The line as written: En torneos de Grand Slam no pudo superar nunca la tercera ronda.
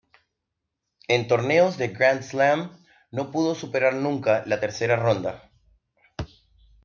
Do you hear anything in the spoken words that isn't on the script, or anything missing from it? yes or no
no